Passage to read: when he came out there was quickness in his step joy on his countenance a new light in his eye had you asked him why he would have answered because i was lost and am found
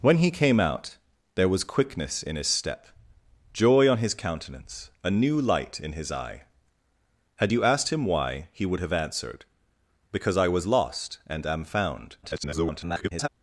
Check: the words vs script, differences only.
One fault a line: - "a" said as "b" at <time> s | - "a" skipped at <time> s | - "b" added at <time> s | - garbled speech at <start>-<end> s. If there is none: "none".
- garbled speech at 12.2-13.3 s